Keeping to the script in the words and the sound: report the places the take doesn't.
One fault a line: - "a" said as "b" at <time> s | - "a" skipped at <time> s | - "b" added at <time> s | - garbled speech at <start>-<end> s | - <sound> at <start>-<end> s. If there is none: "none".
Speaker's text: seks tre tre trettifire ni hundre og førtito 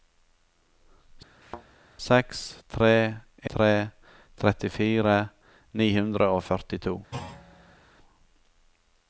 - thud at 1.4-1.7 s
- thud at 7.1-7.8 s